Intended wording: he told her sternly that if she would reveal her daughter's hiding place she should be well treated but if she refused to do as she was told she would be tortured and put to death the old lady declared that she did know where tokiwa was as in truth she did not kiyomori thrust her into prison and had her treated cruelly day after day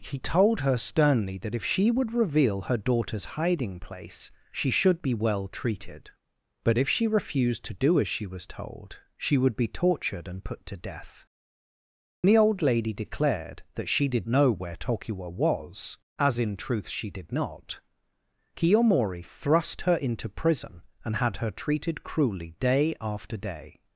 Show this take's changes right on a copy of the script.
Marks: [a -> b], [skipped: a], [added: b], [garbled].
he told her sternly that if she would reveal her daughter's hiding place she should be well treated but if she refused to do as she was told she would be tortured and put to death the old lady declared that she did know where tokiwa was as in truth she did not kiyomori thrust her into prison and had her treated cruelly day after day